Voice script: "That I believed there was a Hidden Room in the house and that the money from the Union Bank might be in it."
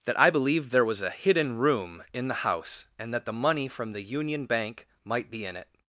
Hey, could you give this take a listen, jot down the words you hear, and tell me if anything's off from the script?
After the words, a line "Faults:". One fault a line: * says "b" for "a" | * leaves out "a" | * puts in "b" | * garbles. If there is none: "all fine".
"That I believed there was a Hidden Room in the house and that the money from the Union Bank might be in it."
Faults:
all fine